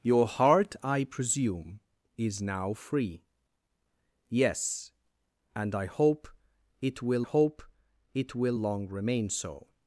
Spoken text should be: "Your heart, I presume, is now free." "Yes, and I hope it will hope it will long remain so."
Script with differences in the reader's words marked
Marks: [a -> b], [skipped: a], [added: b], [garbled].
"Your heart, I presume, is now free." "Yes, and I hope it will hope it will long remain so."